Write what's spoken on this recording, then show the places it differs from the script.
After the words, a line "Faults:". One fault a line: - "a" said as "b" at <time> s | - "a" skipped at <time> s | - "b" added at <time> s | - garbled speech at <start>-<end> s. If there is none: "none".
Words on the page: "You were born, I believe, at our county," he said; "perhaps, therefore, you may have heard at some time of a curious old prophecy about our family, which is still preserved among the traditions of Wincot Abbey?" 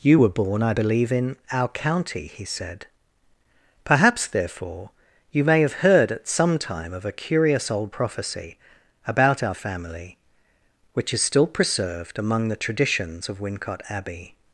"You were born, I believe, in our county," he said; "perhaps, therefore, you may have heard at some time of a curious old prophecy about our family, which is still preserved among the traditions of Wincot Abbey?"
Faults:
- "at" said as "in" at 1.1 s